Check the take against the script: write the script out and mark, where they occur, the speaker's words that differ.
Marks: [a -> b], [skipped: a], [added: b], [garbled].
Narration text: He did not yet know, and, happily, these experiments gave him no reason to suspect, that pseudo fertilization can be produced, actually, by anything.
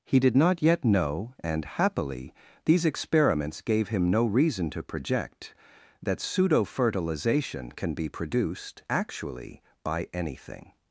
He did not yet know, and, happily, these experiments gave him no reason to [suspect, -> project] that pseudo fertilization can be produced, actually, by anything.